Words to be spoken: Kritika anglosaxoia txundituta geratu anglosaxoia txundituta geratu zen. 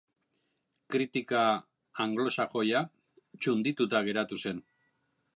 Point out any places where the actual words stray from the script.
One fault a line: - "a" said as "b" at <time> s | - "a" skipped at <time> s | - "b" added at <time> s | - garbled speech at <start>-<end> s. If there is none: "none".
- "anglosaxoia txundituta geratu" skipped at 4.4 s